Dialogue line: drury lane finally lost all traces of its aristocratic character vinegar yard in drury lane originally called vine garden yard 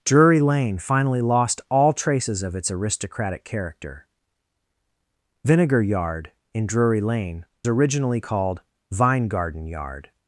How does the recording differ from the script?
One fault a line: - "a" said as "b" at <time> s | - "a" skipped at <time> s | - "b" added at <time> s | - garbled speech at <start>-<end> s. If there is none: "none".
none